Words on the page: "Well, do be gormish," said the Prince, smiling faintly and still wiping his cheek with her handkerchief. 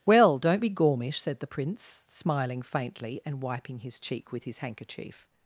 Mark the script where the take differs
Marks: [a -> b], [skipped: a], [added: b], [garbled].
"Well, [do -> don't] be gormish," said the Prince, smiling faintly and [skipped: still] wiping his cheek with [her -> his] handkerchief.